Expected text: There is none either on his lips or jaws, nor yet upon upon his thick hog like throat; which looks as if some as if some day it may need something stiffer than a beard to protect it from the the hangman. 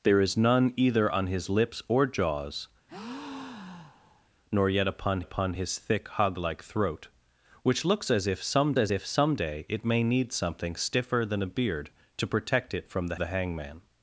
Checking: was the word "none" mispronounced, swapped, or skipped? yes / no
no